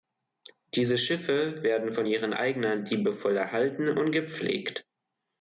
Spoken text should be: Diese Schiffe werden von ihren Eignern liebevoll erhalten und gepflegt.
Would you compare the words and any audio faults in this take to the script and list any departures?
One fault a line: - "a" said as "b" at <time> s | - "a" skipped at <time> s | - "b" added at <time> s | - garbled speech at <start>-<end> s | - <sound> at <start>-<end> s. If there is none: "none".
none